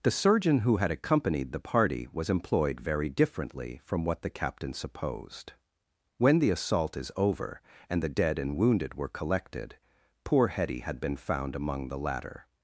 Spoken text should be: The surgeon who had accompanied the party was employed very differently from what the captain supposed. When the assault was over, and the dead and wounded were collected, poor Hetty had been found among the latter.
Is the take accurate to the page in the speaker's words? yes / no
no